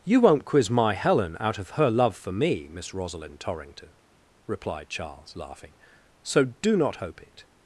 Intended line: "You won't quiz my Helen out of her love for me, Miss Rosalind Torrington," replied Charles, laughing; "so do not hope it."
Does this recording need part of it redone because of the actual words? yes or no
no